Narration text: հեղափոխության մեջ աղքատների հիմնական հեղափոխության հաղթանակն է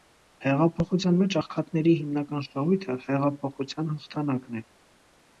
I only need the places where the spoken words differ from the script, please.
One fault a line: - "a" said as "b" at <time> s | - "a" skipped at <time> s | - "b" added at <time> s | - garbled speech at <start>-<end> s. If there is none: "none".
- "շահույթը" added at 2.4 s